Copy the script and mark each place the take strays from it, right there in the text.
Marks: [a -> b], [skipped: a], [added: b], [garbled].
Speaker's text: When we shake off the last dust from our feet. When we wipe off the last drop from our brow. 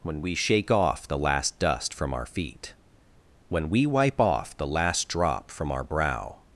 When we shake off the last dust from our feet. When we wipe off the last drop from our brow.